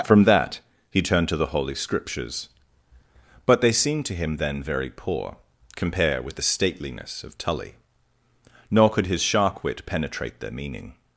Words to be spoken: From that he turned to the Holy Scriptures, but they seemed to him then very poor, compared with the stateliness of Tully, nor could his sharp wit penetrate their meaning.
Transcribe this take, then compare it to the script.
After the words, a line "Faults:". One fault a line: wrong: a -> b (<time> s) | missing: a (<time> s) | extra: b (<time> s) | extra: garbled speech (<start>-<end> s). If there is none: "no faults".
From that he turned to the Holy Scriptures, but they seemed to him then very poor, compare with the stateliness of Tully, nor could his shark wit penetrate their meaning.
Faults:
wrong: compared -> compare (5.8 s)
wrong: sharp -> shark (9.2 s)